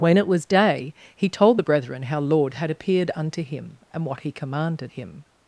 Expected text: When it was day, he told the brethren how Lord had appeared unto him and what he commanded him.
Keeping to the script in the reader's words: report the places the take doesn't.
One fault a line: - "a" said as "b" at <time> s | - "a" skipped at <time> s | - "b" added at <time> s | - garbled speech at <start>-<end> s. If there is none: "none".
none